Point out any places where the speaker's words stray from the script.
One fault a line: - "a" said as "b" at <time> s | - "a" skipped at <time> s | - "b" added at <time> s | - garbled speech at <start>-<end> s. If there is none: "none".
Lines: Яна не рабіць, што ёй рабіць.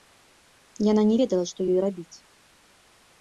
- "рабіць" said as "ведала" at 1.2 s